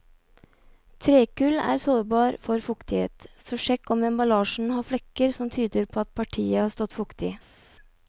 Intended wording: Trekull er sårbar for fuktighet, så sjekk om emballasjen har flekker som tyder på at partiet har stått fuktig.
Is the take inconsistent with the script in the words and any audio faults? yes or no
no